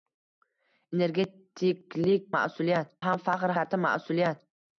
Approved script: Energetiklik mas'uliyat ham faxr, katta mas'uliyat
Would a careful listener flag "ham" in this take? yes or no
no